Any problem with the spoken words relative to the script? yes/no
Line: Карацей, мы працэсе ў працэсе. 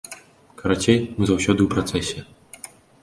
yes